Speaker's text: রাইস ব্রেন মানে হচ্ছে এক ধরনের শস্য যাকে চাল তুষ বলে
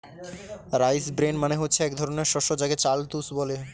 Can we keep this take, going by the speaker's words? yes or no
yes